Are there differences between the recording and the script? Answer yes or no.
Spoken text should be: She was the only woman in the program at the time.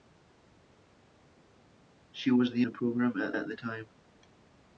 yes